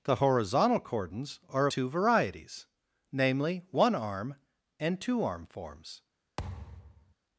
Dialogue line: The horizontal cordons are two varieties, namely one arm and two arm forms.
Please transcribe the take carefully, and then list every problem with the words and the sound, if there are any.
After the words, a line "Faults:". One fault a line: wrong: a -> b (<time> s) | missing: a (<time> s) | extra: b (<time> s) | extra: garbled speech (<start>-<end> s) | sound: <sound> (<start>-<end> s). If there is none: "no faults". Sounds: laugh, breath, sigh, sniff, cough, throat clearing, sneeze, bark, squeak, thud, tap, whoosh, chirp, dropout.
The horizontal cordons are two varieties, namely one arm and two arm forms.
Faults:
sound: thud (6.4-7.2 s)